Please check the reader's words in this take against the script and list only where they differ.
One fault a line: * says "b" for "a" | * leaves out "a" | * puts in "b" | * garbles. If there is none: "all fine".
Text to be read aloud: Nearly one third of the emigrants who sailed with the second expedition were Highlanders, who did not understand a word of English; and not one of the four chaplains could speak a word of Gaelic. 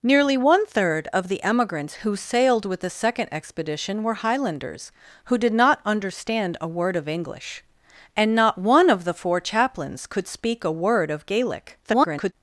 * garbles